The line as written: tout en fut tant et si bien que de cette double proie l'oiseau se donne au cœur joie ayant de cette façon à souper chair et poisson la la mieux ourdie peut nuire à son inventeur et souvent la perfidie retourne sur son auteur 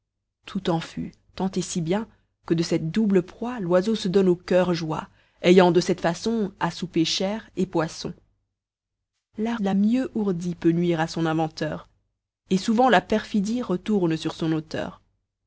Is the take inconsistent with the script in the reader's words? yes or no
no